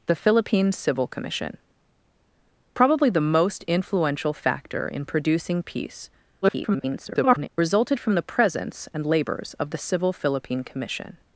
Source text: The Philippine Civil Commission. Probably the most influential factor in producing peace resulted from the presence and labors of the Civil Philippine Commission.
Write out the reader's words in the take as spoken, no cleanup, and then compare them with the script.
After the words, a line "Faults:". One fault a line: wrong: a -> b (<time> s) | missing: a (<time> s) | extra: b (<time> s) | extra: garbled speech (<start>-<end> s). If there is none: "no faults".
The Philippine Civil Commission. Probably the most influential factor in producing peace [garbled] resulted from the presence and labors of the Civil Philippine Commission.
Faults:
extra: garbled speech (6.4-7.5 s)